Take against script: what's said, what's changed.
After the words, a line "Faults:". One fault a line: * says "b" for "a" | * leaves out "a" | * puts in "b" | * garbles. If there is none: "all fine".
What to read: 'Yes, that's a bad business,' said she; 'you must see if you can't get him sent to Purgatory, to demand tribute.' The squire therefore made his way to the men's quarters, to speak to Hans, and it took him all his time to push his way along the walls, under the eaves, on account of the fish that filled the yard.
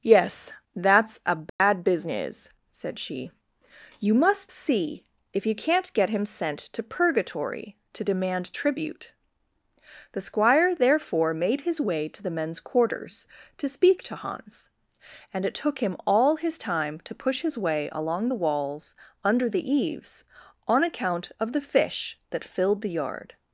'Yes, that's a bad business,' said she; 'you must see if you can't get him sent to Purgatory, to demand tribute.' The squire therefore made his way to the men's quarters, to speak to Hans, and it took him all his time to push his way along the walls, under the eaves, on account of the fish that filled the yard.
Faults:
all fine